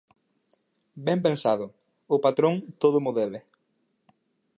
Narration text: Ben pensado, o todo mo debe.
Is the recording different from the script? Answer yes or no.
yes